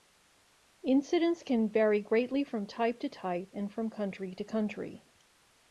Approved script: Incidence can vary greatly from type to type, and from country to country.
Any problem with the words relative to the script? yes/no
no